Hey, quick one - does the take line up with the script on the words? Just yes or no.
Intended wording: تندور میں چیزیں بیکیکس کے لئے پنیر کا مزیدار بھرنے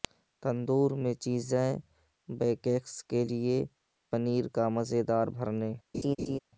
yes